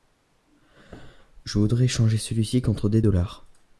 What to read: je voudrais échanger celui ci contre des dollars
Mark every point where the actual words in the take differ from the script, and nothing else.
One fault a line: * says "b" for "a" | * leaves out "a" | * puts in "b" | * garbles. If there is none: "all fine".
all fine